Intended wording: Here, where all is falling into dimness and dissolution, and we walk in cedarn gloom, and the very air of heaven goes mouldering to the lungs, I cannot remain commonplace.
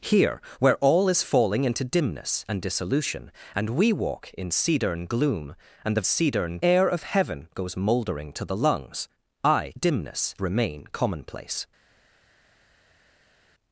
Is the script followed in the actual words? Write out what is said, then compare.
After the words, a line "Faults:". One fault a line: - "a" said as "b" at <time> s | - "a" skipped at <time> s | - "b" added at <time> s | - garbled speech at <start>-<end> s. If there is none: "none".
Here, where all is falling into dimness and dissolution, and we walk in cedarn gloom, and the cedarn air of heaven goes mouldering to the lungs, I dimness remain commonplace.
Faults:
- "very" said as "cedarn" at 6.0 s
- "cannot" said as "dimness" at 9.7 s